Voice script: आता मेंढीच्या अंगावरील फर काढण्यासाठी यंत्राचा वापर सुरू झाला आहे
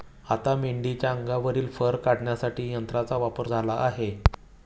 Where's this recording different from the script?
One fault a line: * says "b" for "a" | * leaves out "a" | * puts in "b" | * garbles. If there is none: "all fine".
* leaves out "सुरू"